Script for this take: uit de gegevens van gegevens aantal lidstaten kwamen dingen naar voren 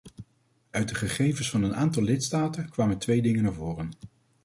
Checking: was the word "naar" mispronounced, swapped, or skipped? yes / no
no